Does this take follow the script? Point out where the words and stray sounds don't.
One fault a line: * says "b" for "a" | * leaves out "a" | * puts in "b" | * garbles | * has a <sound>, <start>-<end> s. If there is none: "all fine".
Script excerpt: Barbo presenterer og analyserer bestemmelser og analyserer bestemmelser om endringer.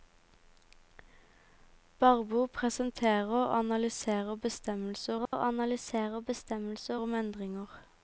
* has a dropout, 5.3-5.3 s